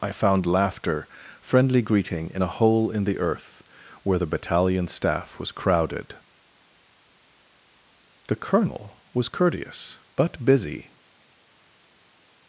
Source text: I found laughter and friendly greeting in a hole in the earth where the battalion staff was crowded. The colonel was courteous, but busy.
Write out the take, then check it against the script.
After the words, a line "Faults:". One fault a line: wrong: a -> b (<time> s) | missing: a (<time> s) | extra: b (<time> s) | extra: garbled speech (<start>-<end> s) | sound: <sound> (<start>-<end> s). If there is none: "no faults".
I found laughter friendly greeting in a hole in the earth where the battalion staff was crowded. The colonel was courteous, but busy.
Faults:
missing: and (1.1 s)